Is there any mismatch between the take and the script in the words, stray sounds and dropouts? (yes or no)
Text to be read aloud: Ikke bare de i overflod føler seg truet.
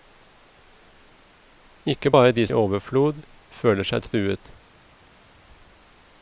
no